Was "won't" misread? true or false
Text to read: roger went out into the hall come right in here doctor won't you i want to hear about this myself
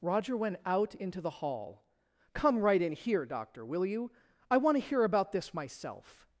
true